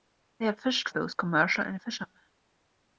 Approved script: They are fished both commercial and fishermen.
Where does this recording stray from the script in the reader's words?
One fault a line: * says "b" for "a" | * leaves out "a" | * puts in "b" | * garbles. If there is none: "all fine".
all fine